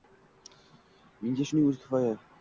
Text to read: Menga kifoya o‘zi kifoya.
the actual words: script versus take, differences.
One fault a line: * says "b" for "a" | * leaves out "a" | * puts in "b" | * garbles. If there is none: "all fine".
* says "shuning" for "kifoya"